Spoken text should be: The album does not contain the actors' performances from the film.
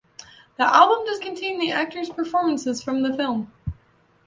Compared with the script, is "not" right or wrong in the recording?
wrong